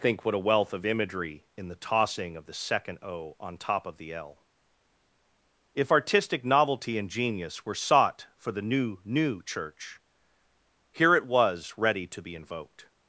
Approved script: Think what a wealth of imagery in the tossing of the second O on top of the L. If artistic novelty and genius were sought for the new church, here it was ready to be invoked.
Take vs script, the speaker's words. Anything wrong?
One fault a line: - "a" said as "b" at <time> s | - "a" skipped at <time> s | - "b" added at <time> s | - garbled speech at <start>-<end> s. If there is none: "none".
- "new" added at 9.0 s